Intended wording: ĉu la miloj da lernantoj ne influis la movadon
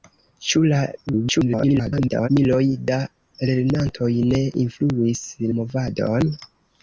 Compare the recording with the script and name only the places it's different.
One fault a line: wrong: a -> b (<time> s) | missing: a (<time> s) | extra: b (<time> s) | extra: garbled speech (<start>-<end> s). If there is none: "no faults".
extra: garbled speech (1.1-2.3 s)
missing: la (5.3 s)